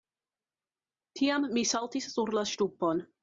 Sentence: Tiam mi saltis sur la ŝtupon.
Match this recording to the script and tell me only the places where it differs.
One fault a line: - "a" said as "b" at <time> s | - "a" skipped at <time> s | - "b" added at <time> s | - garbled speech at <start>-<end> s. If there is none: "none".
none